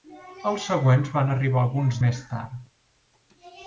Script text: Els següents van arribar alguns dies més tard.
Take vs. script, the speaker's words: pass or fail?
fail